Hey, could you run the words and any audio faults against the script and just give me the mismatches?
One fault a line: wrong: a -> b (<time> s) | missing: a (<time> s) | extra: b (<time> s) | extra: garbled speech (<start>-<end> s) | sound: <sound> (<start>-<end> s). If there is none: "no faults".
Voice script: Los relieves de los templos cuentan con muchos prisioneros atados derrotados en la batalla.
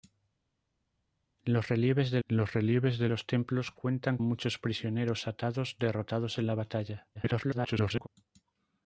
extra: relieves de los (2.5 s)
missing: con (4.2 s)
extra: garbled speech (7.1-8.1 s)